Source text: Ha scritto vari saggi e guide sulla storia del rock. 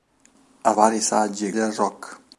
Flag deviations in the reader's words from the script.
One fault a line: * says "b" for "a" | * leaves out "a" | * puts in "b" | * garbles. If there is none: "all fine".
* leaves out "scritto"
* leaves out "guide sulla storia"